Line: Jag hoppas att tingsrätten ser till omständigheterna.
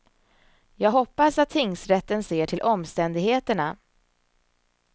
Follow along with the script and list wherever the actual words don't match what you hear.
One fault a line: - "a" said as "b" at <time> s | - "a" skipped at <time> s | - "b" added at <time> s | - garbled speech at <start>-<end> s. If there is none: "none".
none